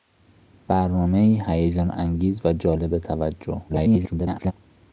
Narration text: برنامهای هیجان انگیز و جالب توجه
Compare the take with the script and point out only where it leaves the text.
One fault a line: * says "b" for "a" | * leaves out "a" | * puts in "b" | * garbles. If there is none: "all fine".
* garbles